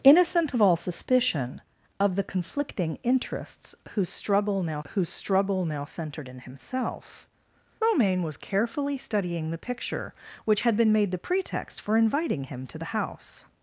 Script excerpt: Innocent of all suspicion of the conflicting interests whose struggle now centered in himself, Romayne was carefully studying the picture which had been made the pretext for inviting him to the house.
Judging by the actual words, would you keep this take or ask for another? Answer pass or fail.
fail